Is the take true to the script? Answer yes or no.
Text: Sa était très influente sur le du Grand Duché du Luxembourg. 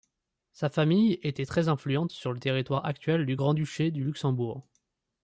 no